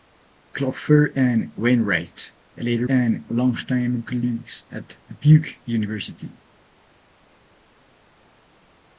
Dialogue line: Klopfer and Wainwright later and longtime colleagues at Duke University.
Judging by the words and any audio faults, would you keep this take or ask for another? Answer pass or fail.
pass